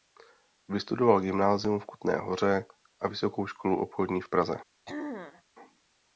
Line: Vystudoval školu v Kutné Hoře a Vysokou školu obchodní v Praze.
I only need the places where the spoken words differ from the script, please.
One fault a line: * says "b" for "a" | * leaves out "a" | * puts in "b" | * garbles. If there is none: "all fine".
* says "gymnázium" for "školu"